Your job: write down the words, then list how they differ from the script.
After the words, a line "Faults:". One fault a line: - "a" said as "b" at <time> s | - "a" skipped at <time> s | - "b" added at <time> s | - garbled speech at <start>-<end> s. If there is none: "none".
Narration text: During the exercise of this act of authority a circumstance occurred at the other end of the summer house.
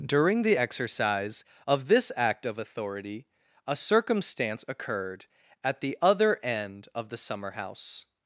During the exercise of this act of authority a circumstance occurred at the other end of the summer house.
Faults:
none